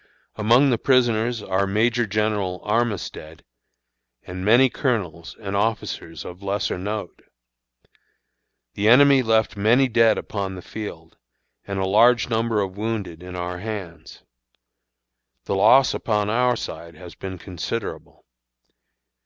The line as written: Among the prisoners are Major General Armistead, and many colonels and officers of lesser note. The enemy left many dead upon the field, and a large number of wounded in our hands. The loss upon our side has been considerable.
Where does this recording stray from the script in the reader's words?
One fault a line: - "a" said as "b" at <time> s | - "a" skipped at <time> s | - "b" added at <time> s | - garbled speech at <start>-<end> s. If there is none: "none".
none